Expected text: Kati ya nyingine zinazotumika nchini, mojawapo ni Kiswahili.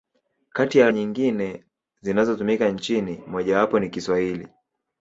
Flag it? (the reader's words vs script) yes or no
no